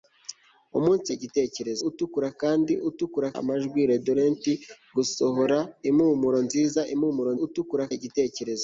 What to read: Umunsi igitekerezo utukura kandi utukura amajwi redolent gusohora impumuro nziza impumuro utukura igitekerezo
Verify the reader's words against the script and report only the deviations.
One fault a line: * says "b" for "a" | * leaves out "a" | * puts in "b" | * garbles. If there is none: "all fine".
all fine